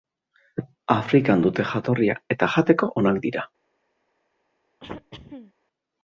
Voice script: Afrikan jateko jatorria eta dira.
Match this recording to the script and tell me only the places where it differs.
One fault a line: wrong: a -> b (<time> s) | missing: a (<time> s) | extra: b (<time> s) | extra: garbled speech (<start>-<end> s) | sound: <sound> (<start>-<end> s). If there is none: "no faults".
wrong: jateko -> dute (1.4 s)
extra: jateko onak (2.5 s)
sound: throat clearing (4.8-5.5 s)